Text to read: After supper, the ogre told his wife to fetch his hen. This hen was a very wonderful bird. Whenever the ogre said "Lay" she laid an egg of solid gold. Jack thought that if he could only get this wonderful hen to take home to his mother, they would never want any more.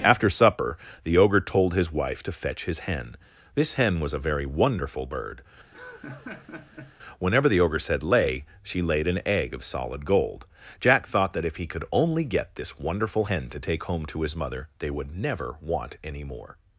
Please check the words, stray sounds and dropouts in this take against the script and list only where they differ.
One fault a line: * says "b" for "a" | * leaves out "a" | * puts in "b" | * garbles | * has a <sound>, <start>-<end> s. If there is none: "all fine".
* has a laugh, 5.7-7.0 s